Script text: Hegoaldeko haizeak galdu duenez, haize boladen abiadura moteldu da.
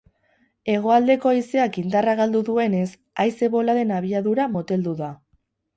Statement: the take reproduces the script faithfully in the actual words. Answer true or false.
false